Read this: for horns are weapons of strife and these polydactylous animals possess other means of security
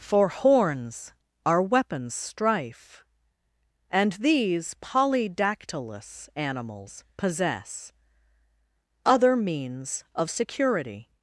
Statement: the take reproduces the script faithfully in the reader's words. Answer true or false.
false